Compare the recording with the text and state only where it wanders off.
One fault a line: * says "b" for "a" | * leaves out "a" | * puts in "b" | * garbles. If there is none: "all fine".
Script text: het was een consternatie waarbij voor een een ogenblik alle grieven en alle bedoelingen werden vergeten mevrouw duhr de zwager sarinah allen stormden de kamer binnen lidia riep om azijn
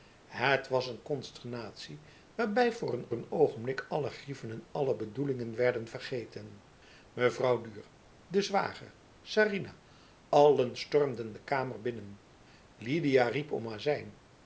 all fine